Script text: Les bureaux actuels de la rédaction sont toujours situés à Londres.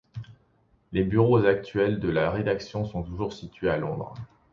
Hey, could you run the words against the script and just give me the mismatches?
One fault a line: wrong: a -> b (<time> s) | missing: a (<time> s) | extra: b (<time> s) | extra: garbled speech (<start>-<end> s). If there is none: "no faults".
no faults